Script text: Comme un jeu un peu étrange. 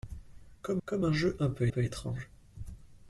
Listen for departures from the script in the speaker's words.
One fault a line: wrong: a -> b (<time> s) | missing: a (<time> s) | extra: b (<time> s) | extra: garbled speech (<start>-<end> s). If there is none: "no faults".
extra: comme (0.9 s)
extra: peu (1.7 s)